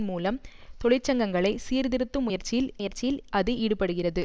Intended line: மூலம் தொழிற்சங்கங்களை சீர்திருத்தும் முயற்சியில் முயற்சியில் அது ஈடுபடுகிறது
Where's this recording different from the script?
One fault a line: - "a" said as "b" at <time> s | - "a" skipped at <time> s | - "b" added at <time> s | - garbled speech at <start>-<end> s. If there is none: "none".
none